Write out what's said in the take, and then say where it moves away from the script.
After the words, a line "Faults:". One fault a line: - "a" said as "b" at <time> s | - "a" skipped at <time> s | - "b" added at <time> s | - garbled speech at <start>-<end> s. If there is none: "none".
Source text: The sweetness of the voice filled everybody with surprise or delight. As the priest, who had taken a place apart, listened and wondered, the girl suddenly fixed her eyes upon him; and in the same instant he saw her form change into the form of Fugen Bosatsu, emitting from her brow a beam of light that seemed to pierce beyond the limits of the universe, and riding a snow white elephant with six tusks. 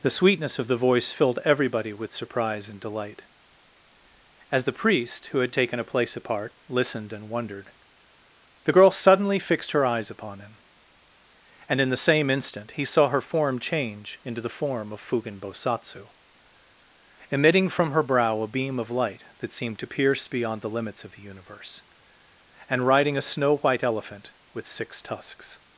The sweetness of the voice filled everybody with surprise and delight. As the priest, who had taken a place apart, listened and wondered, the girl suddenly fixed her eyes upon him; and in the same instant he saw her form change into the form of Fugen Bosatsu, emitting from her brow a beam of light that seemed to pierce beyond the limits of the universe, and riding a snow white elephant with six tusks.
Faults:
- "or" said as "and" at 2.7 s